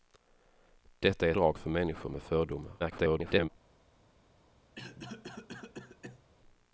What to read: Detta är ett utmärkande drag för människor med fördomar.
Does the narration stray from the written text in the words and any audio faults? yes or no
yes